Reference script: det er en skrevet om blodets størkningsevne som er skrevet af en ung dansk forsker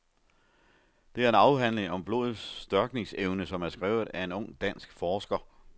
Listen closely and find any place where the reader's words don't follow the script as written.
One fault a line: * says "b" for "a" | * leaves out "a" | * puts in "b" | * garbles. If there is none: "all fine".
* says "afhandling" for "skrevet"